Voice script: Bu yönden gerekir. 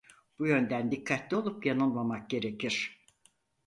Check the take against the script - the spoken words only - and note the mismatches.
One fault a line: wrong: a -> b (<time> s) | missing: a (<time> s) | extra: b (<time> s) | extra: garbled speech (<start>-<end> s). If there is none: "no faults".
extra: dikkatli olup yanılmamak (0.9 s)